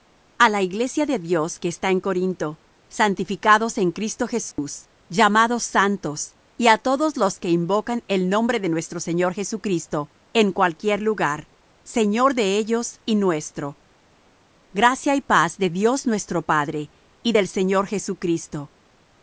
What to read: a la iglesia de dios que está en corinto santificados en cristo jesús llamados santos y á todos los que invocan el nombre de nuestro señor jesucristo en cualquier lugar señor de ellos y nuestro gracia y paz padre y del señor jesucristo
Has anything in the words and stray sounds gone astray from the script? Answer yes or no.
yes